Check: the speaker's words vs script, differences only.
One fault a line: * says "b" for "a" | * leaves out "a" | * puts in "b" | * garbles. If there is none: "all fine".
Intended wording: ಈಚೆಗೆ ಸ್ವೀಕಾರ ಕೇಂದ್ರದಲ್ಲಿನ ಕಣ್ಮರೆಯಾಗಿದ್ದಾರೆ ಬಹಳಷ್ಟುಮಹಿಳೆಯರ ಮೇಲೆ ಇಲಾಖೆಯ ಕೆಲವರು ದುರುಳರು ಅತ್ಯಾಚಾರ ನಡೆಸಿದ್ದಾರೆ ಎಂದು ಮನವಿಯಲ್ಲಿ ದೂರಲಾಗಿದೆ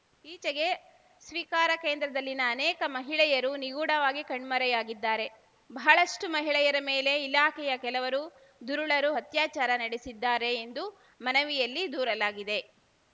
* puts in "ಅನೇಕ ಮಹಿಳೆಯರು ನಿಗೂಢವಾಗಿ"